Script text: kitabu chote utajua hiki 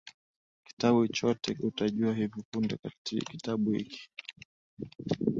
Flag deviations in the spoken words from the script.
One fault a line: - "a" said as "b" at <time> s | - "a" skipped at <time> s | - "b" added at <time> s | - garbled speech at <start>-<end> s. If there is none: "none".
- "hivi punde Kitabu" added at 2.1 s